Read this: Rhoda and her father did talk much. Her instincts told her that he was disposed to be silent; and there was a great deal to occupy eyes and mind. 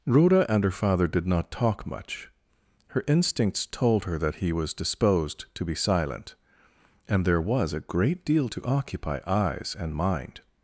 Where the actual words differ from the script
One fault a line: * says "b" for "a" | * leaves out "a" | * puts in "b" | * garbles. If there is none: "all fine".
* puts in "not"